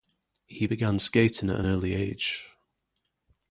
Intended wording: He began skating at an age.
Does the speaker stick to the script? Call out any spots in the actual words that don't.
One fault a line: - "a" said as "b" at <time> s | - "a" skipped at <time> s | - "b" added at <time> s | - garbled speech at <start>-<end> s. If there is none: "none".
- "early" added at 1.6 s